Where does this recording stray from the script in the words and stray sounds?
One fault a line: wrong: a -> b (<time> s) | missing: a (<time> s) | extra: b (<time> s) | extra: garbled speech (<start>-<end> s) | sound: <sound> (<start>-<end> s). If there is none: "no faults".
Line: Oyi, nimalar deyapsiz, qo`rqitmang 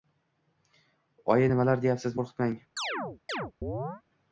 sound: chirp (2.8-4.0 s)